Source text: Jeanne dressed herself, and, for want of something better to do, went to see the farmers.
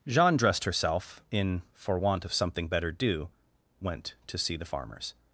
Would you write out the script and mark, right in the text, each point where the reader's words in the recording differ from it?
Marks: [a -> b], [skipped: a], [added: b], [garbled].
Jeanne dressed herself, [and, -> in] for want of something better [skipped: to] do, went to see the farmers.